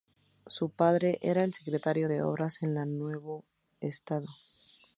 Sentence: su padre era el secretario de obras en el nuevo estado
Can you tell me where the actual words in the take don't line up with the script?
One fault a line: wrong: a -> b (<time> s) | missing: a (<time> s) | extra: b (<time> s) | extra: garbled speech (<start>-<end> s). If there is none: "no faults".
no faults